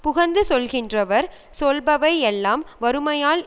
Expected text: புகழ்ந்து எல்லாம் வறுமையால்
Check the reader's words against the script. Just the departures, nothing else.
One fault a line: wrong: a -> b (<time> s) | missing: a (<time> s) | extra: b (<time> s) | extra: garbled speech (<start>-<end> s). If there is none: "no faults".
extra: சொல்கின்றவர் சொல்பவை (0.5 s)